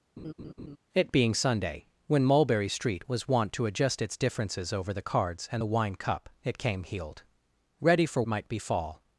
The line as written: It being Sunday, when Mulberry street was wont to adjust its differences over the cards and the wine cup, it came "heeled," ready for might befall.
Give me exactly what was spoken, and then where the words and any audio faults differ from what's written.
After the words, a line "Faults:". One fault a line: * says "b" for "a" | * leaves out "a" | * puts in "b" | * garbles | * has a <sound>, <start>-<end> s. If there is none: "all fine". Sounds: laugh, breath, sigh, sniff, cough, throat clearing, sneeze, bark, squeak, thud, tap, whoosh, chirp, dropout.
It being Sunday, when Mulberry street was wont to adjust its differences over the cards and the wine cup, it came "heeled," ready for might befall.
Faults:
* has a laugh, 0.2-0.8 s